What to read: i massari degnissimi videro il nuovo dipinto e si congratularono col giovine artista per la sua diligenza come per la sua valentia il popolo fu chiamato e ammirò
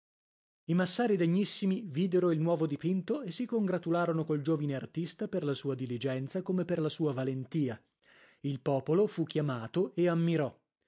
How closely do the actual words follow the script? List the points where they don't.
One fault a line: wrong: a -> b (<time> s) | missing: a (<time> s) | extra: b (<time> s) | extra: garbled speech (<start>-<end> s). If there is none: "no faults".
no faults